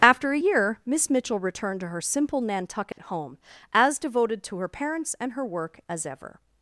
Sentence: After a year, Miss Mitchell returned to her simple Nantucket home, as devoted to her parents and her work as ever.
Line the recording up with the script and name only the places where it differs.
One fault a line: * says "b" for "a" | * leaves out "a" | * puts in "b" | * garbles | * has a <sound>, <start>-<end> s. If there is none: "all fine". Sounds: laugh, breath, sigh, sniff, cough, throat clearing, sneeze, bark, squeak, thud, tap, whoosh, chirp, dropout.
* has a dropout, 2.9-3.0 s